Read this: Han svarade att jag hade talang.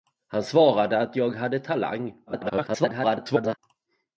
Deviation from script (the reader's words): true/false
true